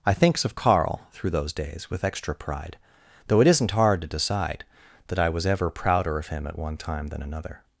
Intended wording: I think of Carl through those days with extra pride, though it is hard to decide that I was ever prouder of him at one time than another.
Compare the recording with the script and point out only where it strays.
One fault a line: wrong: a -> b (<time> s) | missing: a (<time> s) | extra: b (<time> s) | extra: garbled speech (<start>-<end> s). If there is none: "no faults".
wrong: think -> thinks (0.1 s)
wrong: is -> isn't (3.5 s)